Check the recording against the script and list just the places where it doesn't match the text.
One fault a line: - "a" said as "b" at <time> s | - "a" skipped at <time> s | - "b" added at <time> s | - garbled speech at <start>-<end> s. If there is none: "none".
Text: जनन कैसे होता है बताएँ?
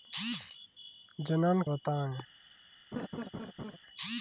- "कैसे होता है" skipped at 1.6 s